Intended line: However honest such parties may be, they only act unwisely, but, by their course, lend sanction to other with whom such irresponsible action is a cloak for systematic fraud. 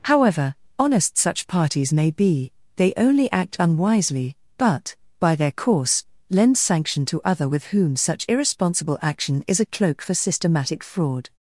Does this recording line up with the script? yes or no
yes